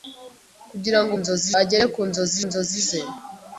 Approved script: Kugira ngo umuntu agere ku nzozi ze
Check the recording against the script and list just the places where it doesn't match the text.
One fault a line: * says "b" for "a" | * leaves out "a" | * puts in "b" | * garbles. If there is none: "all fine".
* says "nzozi" for "umuntu"
* puts in "nzozi"